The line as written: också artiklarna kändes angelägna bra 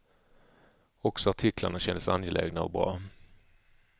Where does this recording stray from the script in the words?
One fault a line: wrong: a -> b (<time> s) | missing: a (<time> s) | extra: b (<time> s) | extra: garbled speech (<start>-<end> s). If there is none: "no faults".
extra: och (2.6 s)